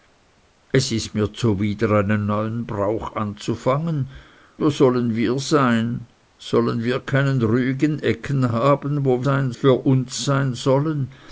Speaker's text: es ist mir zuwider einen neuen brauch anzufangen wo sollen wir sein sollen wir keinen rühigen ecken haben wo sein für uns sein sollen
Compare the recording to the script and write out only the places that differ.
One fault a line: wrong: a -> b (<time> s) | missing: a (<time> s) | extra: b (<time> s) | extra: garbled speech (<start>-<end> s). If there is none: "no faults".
no faults